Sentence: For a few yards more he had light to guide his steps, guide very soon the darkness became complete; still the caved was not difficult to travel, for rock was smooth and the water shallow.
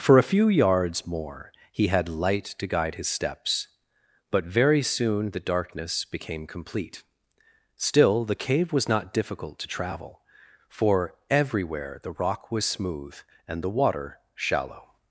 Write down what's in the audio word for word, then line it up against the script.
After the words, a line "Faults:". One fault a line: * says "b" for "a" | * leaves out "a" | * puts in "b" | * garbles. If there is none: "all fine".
For a few yards more he had light to guide his steps, but very soon the darkness became complete; still the cave was not difficult to travel, for everywhere the rock was smooth and the water shallow.
Faults:
* says "but" for "guide"
* says "cave" for "caved"
* puts in "everywhere the"